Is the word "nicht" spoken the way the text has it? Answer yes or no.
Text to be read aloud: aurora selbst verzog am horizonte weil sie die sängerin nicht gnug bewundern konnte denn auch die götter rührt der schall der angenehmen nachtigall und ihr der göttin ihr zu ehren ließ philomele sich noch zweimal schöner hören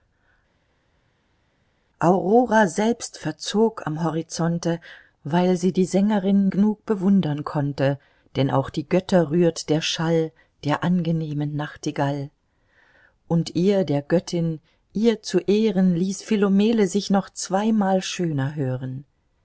no